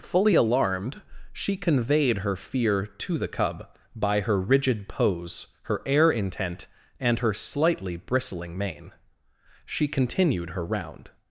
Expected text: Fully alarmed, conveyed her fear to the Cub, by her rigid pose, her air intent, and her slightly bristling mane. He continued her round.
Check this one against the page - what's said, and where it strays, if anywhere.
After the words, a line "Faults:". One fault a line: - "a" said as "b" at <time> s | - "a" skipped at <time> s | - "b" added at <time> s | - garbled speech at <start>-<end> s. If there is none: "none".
Fully alarmed, she conveyed her fear to the Cub, by her rigid pose, her air intent, and her slightly bristling mane. She continued her round.
Faults:
- "she" added at 1.3 s
- "He" said as "She" at 9.6 s